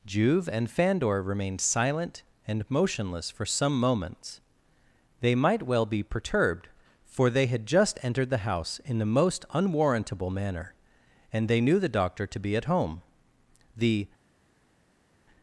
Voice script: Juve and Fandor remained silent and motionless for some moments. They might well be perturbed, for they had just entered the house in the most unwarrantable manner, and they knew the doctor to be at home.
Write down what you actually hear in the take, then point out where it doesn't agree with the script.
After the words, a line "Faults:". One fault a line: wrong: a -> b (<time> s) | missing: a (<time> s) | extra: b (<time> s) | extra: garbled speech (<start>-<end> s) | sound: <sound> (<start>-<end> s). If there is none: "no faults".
Juve and Fandor remained silent and motionless for some moments. They might well be perturbed, for they had just entered the house in the most unwarrantable manner, and they knew the doctor to be at home. The
Faults:
extra: The (13.8 s)